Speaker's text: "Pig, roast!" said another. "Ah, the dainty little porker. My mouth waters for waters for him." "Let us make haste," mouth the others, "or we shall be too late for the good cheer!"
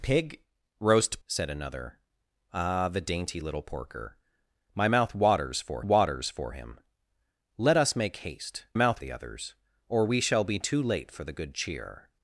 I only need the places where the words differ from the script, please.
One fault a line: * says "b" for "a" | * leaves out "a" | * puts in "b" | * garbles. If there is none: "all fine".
all fine